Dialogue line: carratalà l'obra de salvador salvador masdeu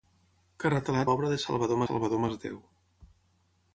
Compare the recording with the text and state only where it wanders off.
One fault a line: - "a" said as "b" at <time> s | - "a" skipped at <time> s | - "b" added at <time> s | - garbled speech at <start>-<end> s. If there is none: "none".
none